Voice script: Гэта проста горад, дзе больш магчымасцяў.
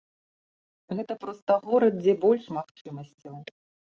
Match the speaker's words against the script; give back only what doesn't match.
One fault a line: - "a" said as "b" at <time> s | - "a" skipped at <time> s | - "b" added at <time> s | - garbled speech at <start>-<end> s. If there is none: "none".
none